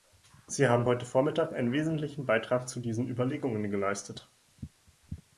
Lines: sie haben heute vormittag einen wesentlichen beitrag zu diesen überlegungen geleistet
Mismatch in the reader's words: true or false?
false